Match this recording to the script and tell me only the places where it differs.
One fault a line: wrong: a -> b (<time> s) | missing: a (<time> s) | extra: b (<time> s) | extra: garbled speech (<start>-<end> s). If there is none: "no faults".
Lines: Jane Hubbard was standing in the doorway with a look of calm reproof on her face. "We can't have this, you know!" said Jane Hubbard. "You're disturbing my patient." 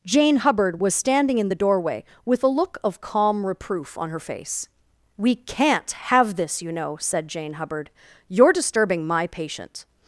no faults